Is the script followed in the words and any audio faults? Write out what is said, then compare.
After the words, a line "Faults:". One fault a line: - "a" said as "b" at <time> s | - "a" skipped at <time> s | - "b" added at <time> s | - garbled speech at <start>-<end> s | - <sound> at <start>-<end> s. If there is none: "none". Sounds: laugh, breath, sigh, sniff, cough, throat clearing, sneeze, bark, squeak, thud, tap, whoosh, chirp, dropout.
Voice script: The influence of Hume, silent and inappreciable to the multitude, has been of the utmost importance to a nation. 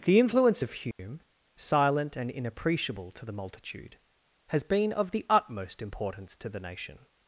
The influence of Hume, silent and inappreciable to the multitude, has been of the utmost importance to the nation.
Faults:
- dropout at 0.9-1.0 s
- "a" said as "the" at 6.5 s